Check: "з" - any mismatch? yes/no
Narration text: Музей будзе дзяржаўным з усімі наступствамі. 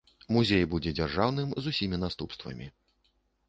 no